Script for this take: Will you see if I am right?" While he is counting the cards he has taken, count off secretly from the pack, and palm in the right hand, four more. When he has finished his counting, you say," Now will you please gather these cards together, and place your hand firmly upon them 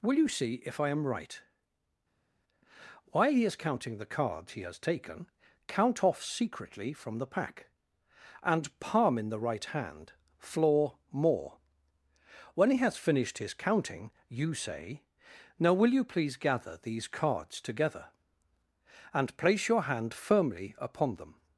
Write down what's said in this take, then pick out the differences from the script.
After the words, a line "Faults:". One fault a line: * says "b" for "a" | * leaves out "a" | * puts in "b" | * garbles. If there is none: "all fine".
Will you see if I am right?" While he is counting the cards he has taken, count off secretly from the pack, and palm in the right hand, floor more. When he has finished his counting, you say," Now will you please gather these cards together, and place your hand firmly upon them
Faults:
* says "floor" for "four"